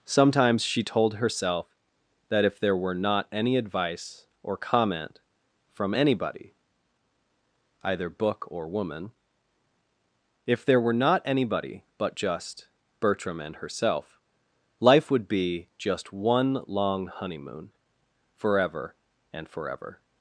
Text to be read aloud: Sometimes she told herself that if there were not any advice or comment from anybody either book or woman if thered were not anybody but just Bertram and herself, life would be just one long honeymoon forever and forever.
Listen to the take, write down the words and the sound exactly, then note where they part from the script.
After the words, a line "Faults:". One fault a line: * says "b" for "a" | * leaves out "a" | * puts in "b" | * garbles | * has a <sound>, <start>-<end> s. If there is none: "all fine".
Sometimes she told herself that if there were not any advice or comment from anybody either book or woman if there were not anybody but just Bertram and herself, life would be just one long honeymoon forever and forever.
Faults:
* says "there" for "thered"